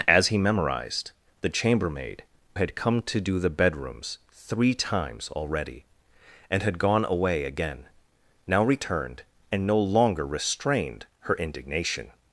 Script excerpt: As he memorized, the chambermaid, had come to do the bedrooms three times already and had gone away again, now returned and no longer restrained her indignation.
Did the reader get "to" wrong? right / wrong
right